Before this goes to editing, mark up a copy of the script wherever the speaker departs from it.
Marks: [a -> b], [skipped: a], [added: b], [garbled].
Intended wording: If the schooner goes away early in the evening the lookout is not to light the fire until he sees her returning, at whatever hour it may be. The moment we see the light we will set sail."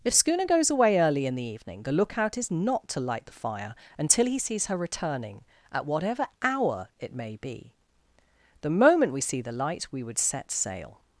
If [skipped: the] schooner goes away early in the evening the lookout is not to light the fire until he sees her returning, at whatever hour it may be. The moment we see the light we [will -> would] set sail."